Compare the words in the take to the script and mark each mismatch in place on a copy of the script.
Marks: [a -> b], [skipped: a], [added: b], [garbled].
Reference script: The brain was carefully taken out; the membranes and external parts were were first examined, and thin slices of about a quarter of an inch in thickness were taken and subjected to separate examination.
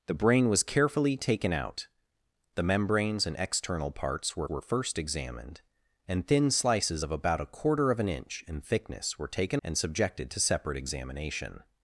The brain was carefully taken out; the membranes and external parts were were first examined, and thin slices of about a quarter of an inch in thickness were taken and subjected to separate examination.